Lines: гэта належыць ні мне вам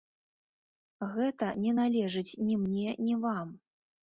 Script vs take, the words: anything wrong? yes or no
yes